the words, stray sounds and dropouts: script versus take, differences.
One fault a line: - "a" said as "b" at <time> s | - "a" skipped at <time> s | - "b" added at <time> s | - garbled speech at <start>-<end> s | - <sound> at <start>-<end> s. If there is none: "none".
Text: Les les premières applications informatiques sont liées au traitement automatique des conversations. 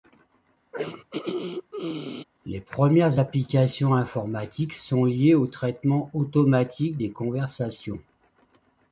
- throat clearing at 0.7-2.2 s
- "les" skipped at 2.6 s